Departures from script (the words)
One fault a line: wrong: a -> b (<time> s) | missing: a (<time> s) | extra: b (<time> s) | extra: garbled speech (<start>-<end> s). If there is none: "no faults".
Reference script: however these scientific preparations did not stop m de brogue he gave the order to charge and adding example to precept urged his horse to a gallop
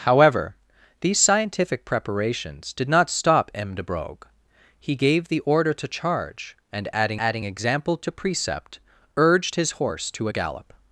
extra: adding (7.2 s)